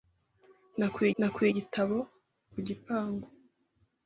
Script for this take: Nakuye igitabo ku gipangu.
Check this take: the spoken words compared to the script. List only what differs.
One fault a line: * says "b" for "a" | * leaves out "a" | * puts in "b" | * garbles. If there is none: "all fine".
* puts in "nakuye"